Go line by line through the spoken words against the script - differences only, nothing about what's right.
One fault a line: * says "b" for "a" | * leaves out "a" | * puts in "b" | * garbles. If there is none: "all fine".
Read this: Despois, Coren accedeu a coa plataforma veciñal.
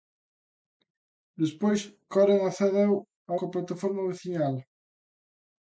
all fine